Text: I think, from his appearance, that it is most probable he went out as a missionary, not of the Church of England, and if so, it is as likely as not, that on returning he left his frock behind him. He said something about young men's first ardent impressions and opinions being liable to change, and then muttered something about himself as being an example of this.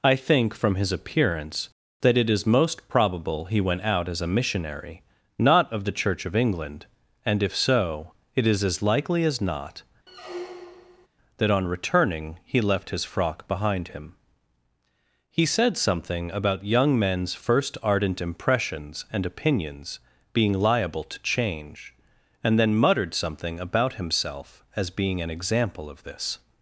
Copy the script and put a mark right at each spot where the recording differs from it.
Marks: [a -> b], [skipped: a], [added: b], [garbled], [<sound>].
I think, from his appearance, that it is most probable he went out as a missionary, not of the Church of England, and if so, it is as likely as not, [squeak] that on returning he left his frock behind him. He said something about young men's first ardent impressions and opinions being liable to change, and then muttered something about himself as being an example of this.